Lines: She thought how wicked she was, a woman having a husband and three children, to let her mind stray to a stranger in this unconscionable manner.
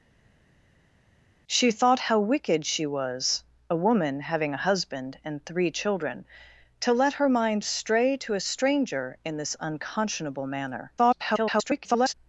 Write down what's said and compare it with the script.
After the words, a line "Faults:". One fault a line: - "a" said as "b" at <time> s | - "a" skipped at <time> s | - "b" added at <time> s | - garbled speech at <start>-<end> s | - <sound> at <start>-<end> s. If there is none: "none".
She thought how wicked she was, a woman having a husband and three children, to let her mind stray to a stranger in this unconscionable manner. [garbled]
Faults:
- garbled speech at 11.0-12.1 s